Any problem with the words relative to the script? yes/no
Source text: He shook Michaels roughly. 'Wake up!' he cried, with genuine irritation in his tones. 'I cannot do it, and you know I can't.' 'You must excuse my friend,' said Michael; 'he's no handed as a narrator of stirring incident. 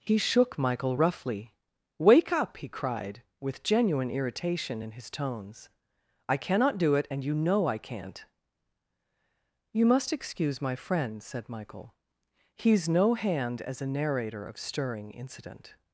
yes